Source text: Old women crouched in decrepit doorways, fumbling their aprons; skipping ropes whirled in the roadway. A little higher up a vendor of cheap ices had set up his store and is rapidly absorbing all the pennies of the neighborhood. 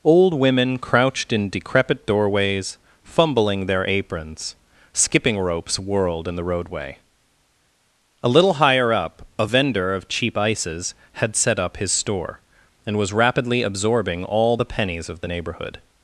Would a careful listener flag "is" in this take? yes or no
yes